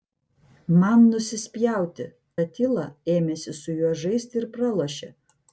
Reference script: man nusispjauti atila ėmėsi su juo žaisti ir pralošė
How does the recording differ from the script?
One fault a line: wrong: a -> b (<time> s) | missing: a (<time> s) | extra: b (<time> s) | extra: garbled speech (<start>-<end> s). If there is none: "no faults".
no faults